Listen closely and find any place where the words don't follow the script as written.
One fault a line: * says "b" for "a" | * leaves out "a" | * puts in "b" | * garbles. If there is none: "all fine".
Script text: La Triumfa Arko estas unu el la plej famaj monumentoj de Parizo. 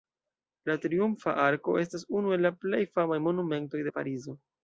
all fine